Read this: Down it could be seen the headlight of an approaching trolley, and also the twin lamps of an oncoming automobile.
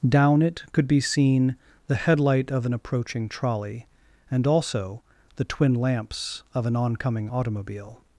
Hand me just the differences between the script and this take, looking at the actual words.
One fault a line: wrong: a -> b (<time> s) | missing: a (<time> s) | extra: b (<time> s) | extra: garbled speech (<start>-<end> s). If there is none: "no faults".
no faults